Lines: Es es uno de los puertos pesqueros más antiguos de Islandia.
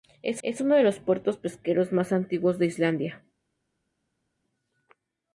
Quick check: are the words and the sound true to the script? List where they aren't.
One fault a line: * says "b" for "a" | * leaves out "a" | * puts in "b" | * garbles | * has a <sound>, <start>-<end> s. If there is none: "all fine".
all fine